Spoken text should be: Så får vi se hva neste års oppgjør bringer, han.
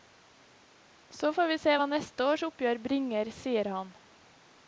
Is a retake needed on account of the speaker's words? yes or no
yes